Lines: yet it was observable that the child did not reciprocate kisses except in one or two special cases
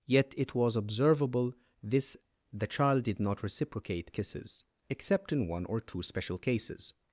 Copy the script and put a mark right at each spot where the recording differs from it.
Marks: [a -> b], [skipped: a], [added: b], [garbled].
yet it was observable [that -> this] the child did not reciprocate kisses except in one or two special cases